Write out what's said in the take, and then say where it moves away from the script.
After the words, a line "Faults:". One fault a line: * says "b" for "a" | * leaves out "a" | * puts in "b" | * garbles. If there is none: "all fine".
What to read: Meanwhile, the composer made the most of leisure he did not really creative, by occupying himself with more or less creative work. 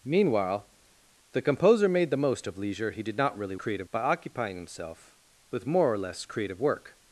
Meanwhile, the composer made the most of leisure he did not really creative, by occupying himself with more or less creative work.
Faults:
all fine